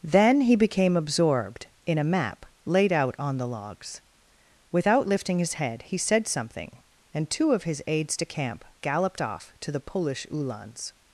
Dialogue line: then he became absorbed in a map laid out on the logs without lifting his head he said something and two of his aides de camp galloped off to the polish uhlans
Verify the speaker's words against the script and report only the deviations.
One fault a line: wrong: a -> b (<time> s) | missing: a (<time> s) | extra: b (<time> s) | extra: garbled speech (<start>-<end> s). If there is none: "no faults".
no faults